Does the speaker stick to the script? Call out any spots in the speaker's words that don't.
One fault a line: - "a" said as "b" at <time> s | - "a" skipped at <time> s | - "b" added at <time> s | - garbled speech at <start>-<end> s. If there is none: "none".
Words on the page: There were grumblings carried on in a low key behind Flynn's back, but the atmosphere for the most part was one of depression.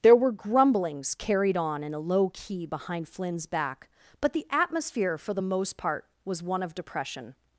none